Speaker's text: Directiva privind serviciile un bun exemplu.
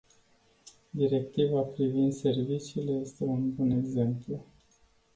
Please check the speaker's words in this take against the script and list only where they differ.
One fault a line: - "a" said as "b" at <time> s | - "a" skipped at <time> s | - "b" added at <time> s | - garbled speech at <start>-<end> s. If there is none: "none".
- "este" added at 3.0 s